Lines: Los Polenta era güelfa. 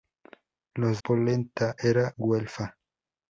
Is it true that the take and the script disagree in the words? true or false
false